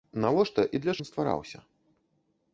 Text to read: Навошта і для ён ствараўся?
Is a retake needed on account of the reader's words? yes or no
no